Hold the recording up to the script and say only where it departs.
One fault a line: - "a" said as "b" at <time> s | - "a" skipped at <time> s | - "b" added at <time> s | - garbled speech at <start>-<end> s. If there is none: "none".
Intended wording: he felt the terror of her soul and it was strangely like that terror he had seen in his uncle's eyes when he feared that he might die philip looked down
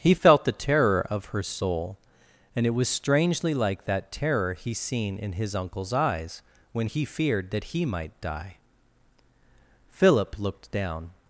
- "had" skipped at 4.7 s